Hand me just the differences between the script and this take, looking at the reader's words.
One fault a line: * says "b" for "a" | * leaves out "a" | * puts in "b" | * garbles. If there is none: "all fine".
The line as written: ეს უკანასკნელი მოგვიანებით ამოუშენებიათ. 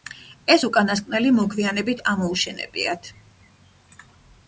all fine